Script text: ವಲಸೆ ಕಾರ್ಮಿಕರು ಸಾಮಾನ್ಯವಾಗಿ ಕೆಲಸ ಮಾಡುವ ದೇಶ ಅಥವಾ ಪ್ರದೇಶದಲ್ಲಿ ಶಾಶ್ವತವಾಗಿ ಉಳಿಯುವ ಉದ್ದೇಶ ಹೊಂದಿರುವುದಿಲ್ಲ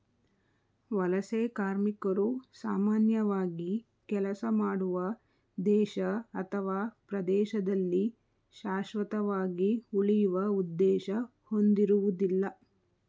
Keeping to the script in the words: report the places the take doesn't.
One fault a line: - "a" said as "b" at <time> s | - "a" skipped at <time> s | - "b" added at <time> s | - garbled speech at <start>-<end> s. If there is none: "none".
none